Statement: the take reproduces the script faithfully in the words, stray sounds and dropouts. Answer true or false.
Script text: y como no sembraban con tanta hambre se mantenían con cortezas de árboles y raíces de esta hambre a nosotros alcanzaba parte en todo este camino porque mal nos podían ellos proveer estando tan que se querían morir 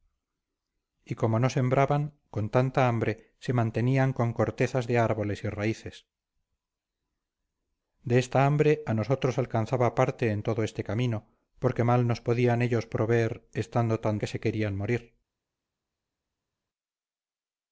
true